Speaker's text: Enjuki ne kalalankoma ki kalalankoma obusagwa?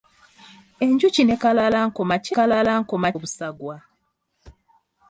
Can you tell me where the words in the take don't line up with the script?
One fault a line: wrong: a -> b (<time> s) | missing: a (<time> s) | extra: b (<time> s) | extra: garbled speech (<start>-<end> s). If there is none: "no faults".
no faults